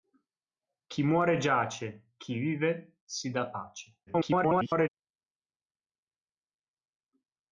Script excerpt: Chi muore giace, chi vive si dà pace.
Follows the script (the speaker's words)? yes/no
no